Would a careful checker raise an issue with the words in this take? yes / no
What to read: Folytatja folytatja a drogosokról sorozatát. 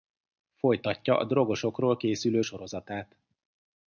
yes